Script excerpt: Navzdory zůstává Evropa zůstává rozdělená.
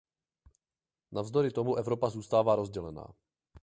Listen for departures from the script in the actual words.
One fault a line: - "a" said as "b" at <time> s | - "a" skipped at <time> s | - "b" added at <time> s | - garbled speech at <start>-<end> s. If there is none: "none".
- "zůstává" said as "tomu" at 1.5 s